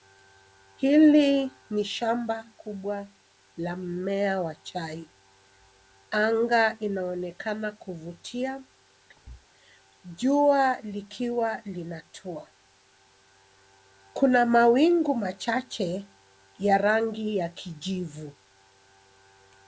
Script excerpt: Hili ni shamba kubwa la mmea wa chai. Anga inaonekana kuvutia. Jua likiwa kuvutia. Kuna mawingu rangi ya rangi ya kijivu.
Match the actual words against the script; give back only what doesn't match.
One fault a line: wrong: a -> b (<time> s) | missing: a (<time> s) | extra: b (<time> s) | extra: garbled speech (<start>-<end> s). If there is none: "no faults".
wrong: kuvutia -> linatua (11.6 s)
wrong: rangi -> machache (15.1 s)